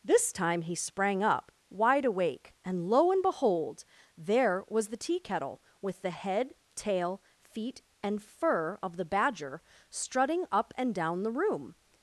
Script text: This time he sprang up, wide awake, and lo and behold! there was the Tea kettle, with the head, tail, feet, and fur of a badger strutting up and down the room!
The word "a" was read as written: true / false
false